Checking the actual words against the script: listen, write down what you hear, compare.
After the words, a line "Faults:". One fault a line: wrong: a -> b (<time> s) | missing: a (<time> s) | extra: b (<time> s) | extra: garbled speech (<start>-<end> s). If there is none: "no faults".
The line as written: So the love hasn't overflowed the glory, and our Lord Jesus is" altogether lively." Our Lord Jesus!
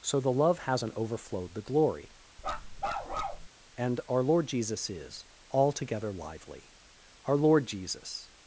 So the love hasn't overflowed the glory, and our Lord Jesus is" altogether lively." Our Lord Jesus!
Faults:
no faults